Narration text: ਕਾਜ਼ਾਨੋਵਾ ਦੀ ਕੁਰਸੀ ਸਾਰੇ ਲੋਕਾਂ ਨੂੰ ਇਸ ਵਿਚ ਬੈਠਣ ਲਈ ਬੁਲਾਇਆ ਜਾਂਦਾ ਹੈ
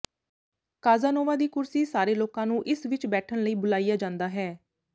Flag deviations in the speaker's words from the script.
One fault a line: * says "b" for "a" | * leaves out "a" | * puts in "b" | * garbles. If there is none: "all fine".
all fine